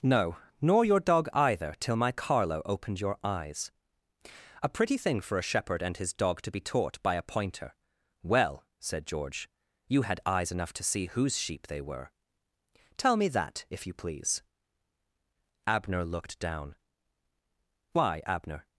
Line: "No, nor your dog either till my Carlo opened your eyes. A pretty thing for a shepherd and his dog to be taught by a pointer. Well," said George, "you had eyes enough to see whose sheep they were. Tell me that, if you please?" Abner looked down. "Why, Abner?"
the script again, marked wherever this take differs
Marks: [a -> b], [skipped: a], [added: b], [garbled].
"No, nor your dog either till my Carlo opened your eyes. A pretty thing for a shepherd and his dog to be taught by a pointer. Well," said George, "you had eyes enough to see whose sheep they were. Tell me that, if you please?" Abner looked down. "Why, Abner?"